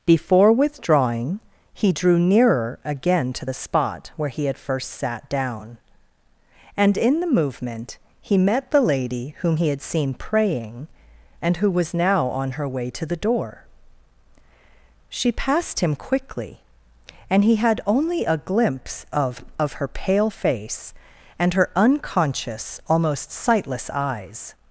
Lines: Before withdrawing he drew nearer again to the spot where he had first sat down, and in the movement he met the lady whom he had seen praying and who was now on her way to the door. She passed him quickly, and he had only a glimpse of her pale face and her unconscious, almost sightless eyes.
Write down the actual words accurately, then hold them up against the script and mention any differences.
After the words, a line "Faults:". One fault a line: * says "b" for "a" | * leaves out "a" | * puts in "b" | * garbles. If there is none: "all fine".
Before withdrawing he drew nearer again to the spot where he had first sat down, and in the movement he met the lady whom he had seen praying and who was now on her way to the door. She passed him quickly, and he had only a glimpse of of her pale face and her unconscious, almost sightless eyes.
Faults:
* puts in "of"